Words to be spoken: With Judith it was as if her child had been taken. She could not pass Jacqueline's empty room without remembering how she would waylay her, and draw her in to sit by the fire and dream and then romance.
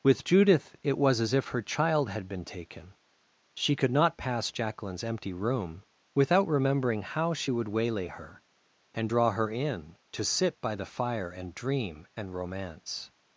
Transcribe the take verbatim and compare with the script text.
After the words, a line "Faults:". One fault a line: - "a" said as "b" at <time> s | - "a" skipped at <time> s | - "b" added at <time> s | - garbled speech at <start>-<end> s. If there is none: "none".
With Judith it was as if her child had been taken. She could not pass Jacqueline's empty room without remembering how she would waylay her, and draw her in to sit by the fire and dream and romance.
Faults:
- "then" skipped at 12.4 s